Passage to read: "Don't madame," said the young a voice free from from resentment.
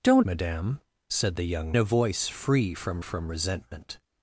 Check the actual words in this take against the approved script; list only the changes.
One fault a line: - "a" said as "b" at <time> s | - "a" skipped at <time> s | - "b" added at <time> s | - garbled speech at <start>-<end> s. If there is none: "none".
none